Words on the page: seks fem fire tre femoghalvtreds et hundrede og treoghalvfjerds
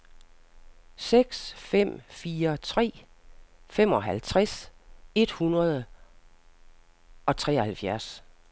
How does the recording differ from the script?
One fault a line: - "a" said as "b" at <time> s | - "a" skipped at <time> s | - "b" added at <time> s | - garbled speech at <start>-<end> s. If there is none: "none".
none